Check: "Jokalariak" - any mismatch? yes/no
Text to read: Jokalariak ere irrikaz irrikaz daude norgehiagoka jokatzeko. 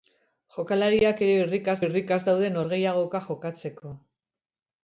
no